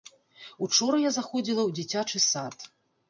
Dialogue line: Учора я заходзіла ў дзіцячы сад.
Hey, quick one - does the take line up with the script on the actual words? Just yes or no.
yes